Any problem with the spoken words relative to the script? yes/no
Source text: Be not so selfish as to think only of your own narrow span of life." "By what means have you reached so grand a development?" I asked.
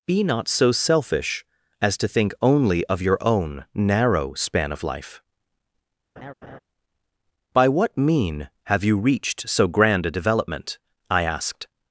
yes